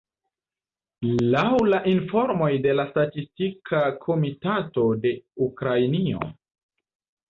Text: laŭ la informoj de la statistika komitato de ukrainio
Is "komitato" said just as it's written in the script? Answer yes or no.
yes